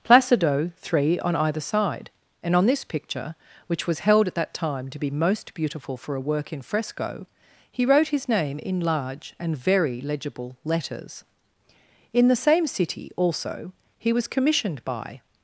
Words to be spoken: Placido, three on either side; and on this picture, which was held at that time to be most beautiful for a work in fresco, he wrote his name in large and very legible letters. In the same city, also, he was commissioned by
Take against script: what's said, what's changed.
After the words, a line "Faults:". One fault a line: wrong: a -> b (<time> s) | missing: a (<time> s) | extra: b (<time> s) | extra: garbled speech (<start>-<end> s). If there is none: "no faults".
Placido, three on either side; and on this picture, which was held at that time to be most beautiful for a work in fresco, he wrote his name in large and very legible letters. In the same city, also, he was commissioned by
Faults:
no faults